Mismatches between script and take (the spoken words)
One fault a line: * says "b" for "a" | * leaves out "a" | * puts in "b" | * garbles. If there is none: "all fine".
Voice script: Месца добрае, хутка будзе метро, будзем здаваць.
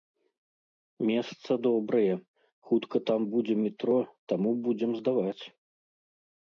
* puts in "там"
* puts in "таму"